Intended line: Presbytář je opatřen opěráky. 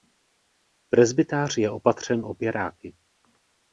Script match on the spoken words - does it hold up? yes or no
yes